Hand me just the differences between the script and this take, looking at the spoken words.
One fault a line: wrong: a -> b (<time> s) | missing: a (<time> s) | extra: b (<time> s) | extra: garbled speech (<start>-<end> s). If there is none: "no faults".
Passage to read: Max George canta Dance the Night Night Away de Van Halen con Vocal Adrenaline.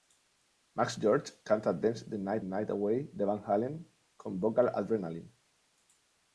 no faults